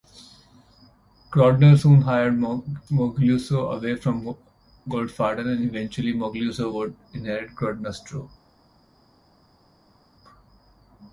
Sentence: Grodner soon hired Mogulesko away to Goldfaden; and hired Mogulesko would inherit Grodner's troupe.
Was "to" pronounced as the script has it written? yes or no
no